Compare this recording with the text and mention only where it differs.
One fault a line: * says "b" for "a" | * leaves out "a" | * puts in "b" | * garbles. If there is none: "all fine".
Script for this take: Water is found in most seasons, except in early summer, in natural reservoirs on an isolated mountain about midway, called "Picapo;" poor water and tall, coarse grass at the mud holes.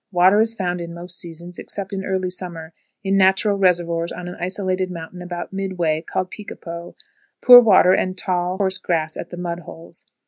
all fine